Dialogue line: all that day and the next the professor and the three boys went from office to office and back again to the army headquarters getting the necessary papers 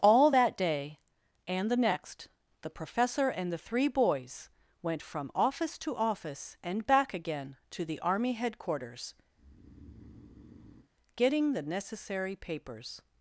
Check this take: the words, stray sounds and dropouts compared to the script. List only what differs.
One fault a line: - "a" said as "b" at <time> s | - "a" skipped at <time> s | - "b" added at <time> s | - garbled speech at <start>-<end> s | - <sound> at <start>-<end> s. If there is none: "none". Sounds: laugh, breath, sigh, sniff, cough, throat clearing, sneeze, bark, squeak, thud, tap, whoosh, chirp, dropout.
- breath at 9.3-10.9 s